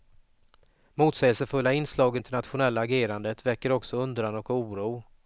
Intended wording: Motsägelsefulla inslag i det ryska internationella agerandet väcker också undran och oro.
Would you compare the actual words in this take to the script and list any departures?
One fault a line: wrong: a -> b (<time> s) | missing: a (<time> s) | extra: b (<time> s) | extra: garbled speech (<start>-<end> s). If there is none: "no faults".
missing: det ryska (2.2 s)